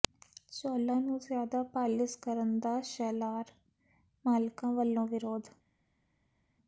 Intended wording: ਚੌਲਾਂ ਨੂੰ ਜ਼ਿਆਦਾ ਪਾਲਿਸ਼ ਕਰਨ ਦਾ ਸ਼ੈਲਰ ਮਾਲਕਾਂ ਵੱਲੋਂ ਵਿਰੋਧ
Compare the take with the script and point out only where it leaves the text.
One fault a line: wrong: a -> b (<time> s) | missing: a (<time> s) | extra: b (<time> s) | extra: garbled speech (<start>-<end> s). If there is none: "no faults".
no faults